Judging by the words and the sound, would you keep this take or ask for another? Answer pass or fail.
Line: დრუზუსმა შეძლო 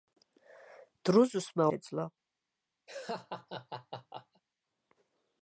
fail